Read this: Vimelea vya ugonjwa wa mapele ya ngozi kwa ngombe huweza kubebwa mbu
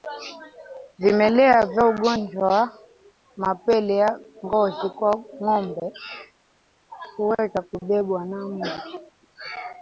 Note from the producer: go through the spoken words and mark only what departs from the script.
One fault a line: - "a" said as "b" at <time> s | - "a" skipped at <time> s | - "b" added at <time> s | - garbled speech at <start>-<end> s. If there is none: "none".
- "na" added at 8.2 s